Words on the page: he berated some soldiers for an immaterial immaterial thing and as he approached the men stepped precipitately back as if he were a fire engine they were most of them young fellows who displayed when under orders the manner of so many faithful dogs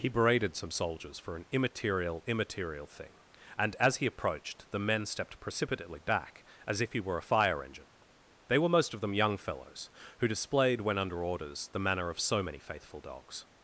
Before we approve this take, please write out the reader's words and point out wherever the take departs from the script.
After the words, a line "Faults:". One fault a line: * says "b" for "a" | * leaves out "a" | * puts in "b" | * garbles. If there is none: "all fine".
he berated some soldiers for an immaterial immaterial thing and as he approached the men stepped precipitately back as if he were a fire engine they were most of them young fellows who displayed when under orders the manner of so many faithful dogs
Faults:
all fine